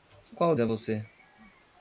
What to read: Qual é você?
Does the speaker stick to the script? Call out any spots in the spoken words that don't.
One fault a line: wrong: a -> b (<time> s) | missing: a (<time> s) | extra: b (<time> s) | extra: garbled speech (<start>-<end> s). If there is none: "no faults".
no faults